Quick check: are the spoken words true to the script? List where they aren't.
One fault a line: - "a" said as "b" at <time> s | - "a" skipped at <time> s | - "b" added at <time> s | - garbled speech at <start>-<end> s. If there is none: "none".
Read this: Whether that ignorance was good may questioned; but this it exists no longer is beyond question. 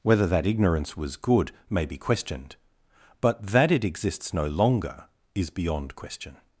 - "be" added at 1.9 s
- "this" said as "that" at 3.5 s